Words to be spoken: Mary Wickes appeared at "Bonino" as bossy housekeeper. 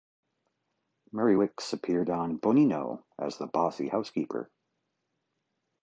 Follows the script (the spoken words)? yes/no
no